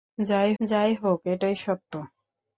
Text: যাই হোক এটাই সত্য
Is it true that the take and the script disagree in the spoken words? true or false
true